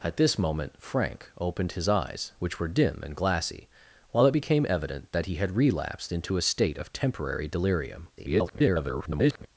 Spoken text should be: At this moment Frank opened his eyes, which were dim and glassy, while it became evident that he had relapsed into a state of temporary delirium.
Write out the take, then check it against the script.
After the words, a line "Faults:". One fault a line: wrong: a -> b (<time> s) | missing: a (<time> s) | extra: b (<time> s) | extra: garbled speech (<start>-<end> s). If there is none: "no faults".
At this moment Frank opened his eyes, which were dim and glassy, while it became evident that he had relapsed into a state of temporary delirium. [garbled]
Faults:
extra: garbled speech (8.2-9.5 s)